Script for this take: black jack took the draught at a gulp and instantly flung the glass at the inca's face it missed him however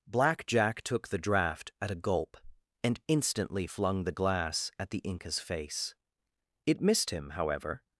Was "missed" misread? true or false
false